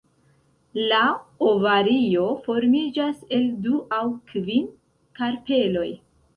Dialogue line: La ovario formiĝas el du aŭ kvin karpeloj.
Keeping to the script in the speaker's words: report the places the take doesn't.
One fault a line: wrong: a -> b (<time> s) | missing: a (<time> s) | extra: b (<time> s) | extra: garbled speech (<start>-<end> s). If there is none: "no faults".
no faults